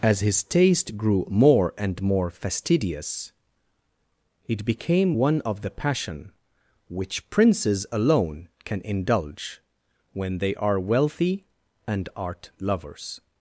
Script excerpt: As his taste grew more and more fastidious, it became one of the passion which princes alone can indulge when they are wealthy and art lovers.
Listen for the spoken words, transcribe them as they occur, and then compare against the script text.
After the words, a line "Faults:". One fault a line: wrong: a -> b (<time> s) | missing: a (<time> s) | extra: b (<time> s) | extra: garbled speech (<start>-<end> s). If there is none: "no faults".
As his taste grew more and more fastidious, it became one of the passion which princes alone can indulge when they are wealthy and art lovers.
Faults:
no faults